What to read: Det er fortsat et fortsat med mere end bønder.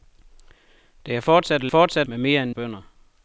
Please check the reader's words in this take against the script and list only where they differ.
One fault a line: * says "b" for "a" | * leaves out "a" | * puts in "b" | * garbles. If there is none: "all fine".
all fine